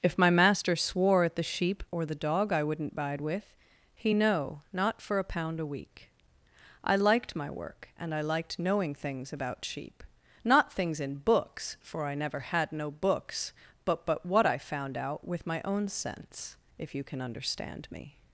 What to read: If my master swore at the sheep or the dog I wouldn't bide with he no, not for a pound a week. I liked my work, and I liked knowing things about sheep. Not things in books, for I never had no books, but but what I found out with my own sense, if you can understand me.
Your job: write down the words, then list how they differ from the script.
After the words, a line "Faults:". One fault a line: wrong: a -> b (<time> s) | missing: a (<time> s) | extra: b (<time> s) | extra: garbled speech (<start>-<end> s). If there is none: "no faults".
If my master swore at the sheep or the dog I wouldn't bide with he no, not for a pound a week. I liked my work, and I liked knowing things about sheep. Not things in books, for I never had no books, but but what I found out with my own sense, if you can understand me.
Faults:
no faults